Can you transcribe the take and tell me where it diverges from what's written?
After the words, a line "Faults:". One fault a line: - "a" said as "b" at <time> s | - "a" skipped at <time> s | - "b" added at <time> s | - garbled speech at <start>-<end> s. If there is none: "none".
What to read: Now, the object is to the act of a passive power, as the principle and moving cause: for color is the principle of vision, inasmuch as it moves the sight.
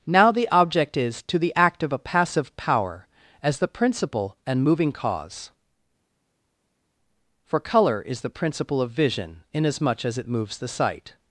Now, the object is to the act of a passive power, as the principle and moving cause: for color is the principle of vision, inasmuch as it moves the sight.
Faults:
none